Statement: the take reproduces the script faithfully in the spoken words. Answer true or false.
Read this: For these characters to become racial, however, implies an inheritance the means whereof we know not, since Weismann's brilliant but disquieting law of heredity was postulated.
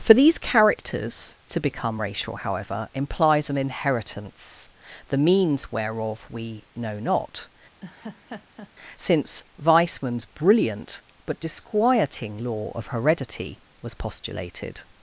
true